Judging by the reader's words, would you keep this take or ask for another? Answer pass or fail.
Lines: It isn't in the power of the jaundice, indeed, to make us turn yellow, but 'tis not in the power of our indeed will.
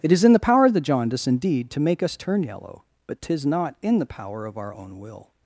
fail